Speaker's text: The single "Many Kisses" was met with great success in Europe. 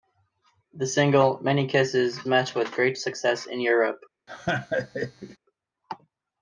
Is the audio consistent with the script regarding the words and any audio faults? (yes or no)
no